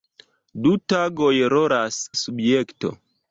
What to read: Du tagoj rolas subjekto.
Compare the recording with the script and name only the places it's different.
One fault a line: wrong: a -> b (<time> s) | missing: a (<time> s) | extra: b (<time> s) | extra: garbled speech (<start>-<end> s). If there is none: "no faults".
no faults